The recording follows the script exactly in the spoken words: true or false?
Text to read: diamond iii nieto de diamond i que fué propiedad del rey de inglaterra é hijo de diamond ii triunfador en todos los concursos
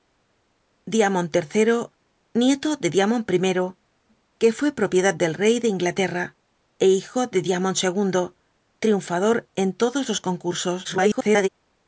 false